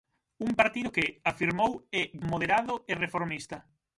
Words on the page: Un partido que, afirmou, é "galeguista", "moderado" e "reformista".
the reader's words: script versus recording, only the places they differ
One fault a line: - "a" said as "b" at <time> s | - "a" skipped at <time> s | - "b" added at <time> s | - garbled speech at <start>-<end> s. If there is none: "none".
- "galeguista" skipped at 2.0 s